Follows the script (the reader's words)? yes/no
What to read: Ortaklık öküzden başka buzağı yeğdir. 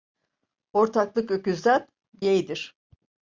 no